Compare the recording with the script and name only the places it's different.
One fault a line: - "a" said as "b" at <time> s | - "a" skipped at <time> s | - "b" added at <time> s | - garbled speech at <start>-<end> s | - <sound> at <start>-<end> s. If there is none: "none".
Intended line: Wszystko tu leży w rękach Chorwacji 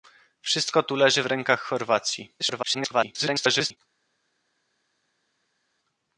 - garbled speech at 2.4-3.8 s